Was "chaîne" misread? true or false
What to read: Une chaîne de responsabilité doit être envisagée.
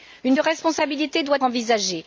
true